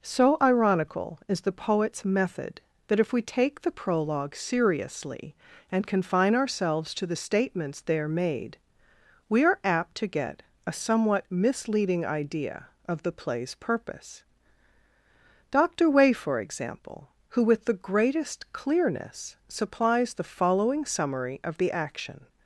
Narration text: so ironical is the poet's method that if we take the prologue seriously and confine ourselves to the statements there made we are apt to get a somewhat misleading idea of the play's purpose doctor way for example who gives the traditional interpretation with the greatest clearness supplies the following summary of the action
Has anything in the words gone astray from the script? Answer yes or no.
yes